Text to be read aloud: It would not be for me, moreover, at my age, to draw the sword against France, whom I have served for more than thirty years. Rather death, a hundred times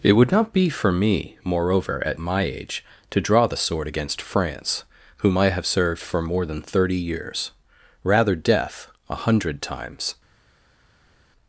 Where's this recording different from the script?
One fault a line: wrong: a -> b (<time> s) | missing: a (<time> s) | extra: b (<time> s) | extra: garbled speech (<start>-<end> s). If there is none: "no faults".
no faults